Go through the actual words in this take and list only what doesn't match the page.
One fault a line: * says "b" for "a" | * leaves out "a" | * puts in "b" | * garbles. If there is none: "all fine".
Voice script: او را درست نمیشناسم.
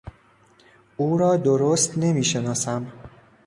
all fine